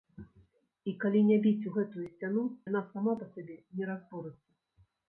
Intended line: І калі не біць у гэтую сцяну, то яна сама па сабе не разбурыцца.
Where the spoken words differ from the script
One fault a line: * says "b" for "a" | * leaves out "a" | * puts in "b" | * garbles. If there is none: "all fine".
* leaves out "то"